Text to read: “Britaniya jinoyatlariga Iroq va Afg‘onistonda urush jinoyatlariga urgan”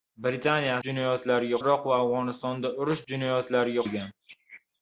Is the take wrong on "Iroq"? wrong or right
right